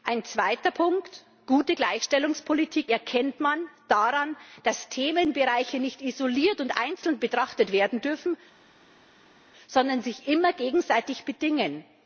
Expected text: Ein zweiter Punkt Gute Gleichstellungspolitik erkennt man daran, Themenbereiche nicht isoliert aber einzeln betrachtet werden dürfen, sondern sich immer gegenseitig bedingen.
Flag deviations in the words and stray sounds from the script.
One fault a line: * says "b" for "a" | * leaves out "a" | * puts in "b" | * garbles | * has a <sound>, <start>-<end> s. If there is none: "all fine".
* puts in "dass"
* says "und" for "aber"